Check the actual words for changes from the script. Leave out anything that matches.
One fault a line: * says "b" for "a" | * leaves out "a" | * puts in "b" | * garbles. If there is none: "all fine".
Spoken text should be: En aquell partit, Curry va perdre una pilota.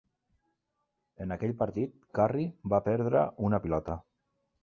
all fine